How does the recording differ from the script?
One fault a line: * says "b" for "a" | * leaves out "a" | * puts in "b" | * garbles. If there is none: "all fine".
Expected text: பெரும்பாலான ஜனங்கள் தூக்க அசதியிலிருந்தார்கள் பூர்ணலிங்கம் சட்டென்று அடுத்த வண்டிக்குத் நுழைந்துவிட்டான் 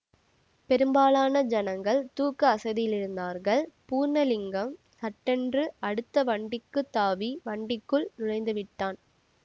* puts in "தாவி வண்டிக்குள்"